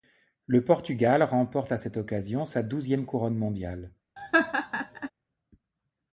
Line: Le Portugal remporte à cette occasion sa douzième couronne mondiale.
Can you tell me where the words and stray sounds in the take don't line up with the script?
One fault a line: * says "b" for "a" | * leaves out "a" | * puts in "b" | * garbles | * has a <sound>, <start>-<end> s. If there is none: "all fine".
* has a laugh, 4.2-5.1 s